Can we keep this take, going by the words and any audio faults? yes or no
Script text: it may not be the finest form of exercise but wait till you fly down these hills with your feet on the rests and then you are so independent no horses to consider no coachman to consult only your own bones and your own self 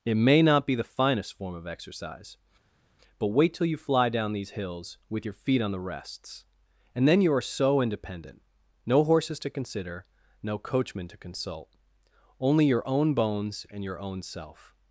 yes